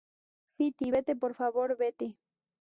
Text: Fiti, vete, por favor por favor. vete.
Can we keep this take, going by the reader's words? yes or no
no